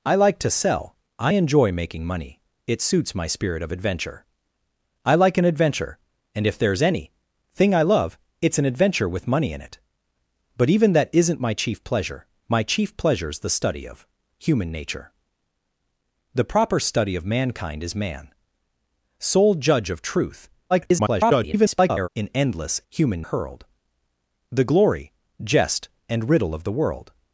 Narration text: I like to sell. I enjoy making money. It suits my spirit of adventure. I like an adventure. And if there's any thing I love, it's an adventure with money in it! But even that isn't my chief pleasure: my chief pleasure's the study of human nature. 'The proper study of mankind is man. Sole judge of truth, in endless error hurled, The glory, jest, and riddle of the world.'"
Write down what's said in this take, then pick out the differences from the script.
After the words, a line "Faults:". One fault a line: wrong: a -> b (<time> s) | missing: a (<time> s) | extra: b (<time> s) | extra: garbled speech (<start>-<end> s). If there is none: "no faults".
I like to sell. I enjoy making money. It suits my spirit of adventure. I like an adventure. And if there's any thing I love, it's an adventure with money in it! But even that isn't my chief pleasure: my chief pleasure's the study of human nature. 'The proper study of mankind is man. Sole judge of truth, [garbled] in endless human hurled, The glory, jest, and riddle of the world.'"
Faults:
extra: garbled speech (20.7-22.1 s)
wrong: error -> human (22.9 s)